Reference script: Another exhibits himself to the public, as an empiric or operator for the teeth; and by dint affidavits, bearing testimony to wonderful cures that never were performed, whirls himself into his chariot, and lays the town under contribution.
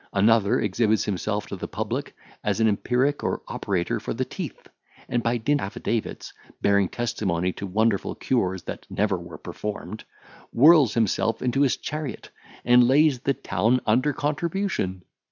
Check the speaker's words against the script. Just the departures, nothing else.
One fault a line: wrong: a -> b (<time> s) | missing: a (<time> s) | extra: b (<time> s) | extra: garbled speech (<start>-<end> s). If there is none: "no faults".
no faults